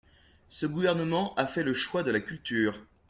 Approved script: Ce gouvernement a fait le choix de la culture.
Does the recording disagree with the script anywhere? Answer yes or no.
no